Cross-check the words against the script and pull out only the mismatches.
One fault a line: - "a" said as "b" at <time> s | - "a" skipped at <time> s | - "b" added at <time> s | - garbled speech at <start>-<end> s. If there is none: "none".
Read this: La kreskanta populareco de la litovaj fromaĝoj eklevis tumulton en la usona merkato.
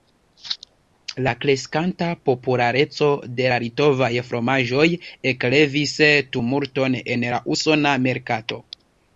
none